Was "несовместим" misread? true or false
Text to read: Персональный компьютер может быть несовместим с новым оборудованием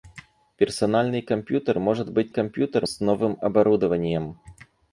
true